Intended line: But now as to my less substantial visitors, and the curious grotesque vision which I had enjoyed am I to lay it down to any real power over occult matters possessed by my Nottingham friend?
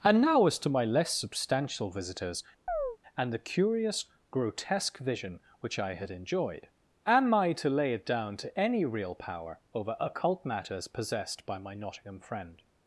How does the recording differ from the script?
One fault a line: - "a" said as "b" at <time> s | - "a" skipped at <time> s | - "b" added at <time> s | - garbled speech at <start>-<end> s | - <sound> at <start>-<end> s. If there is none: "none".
- "But" said as "And" at 0.0 s
- chirp at 2.7-3.0 s